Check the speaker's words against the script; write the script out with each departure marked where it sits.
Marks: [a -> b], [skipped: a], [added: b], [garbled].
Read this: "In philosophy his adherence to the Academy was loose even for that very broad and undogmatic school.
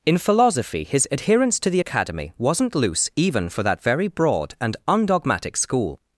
"In philosophy his adherence to the Academy [was -> wasn't] loose even for that very broad and undogmatic school.